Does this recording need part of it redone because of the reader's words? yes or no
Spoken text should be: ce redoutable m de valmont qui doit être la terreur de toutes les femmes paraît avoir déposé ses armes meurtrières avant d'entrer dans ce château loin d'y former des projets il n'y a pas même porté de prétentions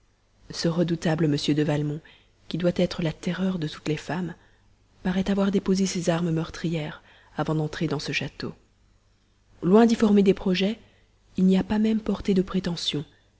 no